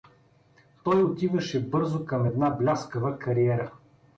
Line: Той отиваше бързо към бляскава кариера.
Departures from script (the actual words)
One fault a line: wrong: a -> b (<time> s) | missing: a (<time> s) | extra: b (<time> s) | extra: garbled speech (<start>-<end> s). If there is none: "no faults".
extra: една (2.2 s)